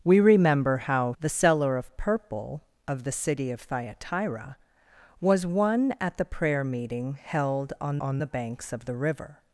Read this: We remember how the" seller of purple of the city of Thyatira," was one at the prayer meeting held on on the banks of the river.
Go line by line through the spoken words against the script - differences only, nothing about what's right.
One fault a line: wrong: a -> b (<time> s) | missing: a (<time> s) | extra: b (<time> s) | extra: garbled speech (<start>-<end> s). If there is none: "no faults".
no faults